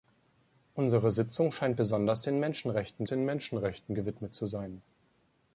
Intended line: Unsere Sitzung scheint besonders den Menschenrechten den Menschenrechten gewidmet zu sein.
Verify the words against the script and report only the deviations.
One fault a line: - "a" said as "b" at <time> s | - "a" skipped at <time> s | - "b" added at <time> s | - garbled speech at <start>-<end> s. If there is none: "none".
none